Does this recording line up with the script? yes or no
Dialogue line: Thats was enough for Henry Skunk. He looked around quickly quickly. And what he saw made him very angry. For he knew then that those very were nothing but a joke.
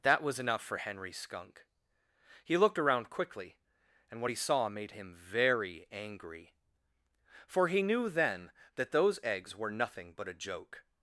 no